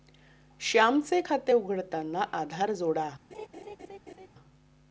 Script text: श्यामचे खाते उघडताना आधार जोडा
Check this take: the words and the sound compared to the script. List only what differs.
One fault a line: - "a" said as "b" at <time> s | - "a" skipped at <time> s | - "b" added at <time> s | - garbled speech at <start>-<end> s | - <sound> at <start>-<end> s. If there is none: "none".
- laugh at 3.3-4.3 s